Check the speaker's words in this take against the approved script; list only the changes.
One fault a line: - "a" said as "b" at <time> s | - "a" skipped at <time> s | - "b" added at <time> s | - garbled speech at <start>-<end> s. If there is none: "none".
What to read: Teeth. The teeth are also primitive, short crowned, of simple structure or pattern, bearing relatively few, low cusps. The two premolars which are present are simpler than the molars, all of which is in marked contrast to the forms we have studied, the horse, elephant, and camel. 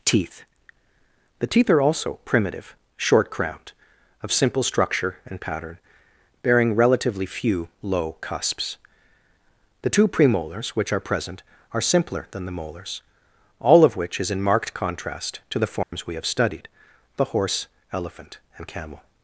- "or" said as "and" at 5.3 s